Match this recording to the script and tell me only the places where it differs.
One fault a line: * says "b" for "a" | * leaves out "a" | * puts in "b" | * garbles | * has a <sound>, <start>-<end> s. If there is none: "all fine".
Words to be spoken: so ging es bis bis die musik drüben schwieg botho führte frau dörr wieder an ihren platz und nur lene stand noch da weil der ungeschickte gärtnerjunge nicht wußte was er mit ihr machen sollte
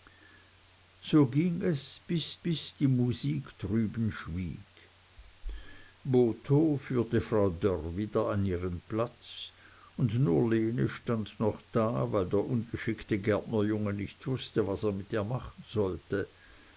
all fine